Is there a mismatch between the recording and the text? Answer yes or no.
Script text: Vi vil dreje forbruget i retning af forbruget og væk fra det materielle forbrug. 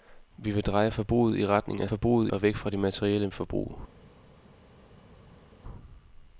no